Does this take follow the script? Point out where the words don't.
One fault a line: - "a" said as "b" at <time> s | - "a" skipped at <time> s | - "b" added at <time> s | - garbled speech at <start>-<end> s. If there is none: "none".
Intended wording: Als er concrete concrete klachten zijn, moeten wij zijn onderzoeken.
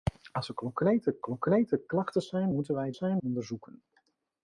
none